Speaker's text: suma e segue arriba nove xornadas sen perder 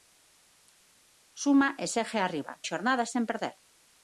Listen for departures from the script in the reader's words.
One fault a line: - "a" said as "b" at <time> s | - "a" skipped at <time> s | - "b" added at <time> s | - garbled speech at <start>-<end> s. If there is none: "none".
- "nove" skipped at 2.5 s